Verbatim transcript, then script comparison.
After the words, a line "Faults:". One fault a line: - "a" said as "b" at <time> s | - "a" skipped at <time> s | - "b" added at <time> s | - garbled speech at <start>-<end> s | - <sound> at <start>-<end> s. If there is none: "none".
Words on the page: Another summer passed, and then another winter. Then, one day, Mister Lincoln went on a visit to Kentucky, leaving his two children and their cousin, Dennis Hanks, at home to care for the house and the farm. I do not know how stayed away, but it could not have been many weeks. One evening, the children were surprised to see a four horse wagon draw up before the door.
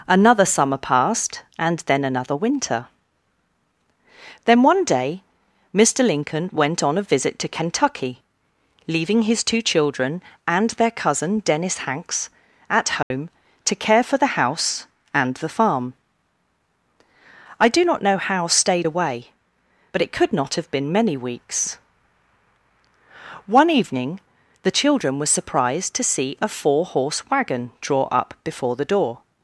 Another summer passed, and then another winter. Then, one day, Mister Lincoln went on a visit to Kentucky, leaving his two children and their cousin, Dennis Hanks, at home to care for the house and the farm. I do not know how stayed away, but it could not have been many weeks. One evening, the children were surprised to see a four horse wagon draw up before the door.
Faults:
- dropout at 13.0-13.1 s